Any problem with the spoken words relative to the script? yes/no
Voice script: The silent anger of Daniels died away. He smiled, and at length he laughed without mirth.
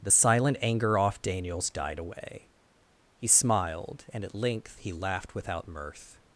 yes